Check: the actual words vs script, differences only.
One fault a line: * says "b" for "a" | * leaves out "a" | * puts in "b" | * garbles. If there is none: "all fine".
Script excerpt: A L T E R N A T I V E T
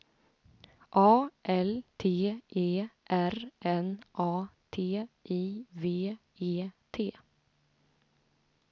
all fine